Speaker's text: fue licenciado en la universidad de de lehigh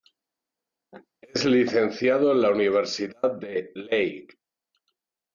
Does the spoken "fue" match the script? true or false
false